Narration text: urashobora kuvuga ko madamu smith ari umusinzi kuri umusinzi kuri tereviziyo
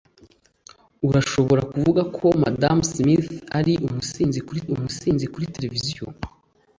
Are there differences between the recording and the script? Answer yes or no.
no